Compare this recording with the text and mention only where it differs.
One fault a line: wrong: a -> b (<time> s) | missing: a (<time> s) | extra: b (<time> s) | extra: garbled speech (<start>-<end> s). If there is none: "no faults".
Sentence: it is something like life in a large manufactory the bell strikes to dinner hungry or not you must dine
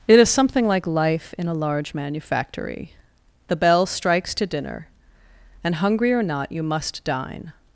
extra: and (5.6 s)